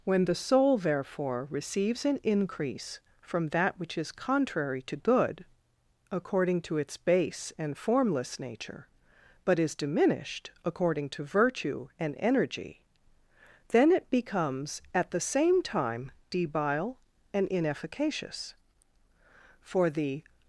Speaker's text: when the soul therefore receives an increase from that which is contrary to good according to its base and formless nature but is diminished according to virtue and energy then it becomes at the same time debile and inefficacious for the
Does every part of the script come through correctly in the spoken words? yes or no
yes